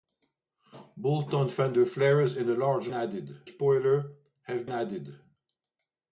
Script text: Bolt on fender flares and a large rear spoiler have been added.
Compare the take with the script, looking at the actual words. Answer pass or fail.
fail